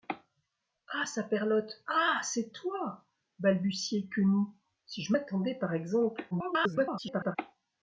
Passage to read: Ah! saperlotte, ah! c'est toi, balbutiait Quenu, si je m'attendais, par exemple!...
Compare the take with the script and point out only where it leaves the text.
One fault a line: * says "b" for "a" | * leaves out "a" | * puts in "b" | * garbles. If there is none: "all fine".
* garbles